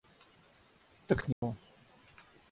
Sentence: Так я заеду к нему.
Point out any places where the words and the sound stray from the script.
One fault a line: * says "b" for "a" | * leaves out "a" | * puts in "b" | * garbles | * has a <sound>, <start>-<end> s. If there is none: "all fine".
* leaves out "я заеду"
* has a dropout, 1.3-1.4 s